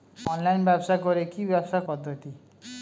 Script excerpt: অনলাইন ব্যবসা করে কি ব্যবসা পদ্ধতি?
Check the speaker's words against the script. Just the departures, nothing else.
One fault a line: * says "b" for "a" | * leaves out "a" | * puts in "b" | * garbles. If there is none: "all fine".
all fine